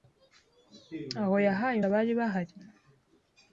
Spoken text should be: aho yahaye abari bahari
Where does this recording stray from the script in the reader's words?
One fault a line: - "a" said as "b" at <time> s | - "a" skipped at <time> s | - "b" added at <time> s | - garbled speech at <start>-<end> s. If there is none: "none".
none